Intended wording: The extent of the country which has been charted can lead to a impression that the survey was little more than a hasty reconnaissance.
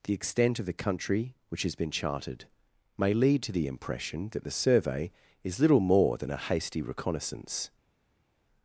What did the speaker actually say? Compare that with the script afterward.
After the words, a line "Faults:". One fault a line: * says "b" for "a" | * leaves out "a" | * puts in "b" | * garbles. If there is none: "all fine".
The extent of the country which has been charted may lead to the impression that the survey is little more than a hasty reconnaissance.
Faults:
* says "may" for "can"
* says "the" for "a"
* says "is" for "was"